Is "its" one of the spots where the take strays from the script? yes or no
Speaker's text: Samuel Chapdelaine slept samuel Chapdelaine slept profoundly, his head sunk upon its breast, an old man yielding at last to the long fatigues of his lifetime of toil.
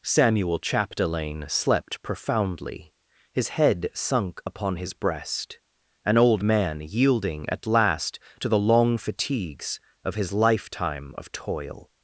yes